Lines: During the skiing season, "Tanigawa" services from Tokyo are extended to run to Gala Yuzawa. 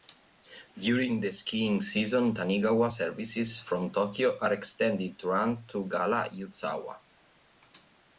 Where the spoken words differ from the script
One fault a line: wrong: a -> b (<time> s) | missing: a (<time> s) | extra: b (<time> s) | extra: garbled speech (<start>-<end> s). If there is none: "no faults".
no faults